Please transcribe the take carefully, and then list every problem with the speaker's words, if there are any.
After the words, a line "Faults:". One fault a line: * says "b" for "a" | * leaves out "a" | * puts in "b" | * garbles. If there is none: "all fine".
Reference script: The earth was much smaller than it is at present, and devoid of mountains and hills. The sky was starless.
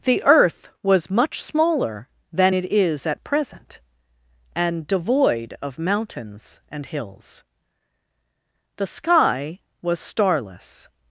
The earth was much smaller than it is at present, and devoid of mountains and hills. The sky was starless.
Faults:
all fine